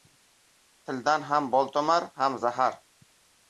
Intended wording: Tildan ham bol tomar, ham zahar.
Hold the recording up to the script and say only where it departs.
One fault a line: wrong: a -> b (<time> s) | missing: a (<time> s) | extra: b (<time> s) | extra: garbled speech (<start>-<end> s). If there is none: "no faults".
no faults